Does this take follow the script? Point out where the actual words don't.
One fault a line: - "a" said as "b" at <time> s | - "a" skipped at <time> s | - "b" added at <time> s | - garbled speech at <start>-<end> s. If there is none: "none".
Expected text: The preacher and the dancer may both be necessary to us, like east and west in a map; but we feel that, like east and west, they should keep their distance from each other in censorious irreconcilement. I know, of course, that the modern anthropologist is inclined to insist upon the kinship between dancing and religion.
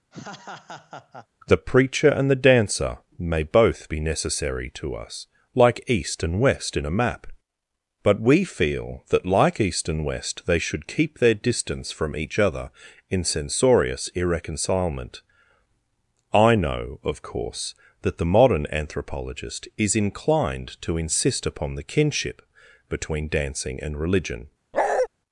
none